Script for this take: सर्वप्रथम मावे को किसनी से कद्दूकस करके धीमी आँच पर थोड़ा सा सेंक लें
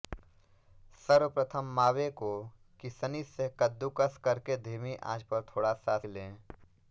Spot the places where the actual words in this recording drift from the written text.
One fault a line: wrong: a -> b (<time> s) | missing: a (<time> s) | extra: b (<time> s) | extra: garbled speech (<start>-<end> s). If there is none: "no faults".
missing: सेंक (6.0 s)